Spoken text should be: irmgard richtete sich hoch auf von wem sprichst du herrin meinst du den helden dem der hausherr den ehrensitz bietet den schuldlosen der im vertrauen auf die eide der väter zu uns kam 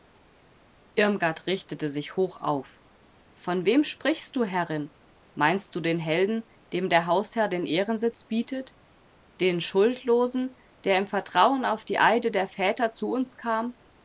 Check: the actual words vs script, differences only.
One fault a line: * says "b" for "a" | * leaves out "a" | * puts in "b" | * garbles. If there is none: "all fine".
all fine